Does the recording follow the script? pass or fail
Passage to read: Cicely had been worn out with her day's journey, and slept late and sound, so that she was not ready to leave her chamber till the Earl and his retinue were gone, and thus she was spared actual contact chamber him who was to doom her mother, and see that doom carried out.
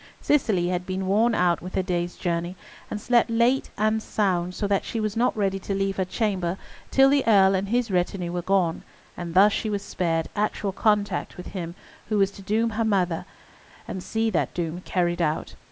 fail